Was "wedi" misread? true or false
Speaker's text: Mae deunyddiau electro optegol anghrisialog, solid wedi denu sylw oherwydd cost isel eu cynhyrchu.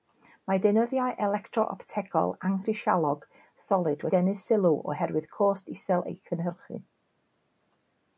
true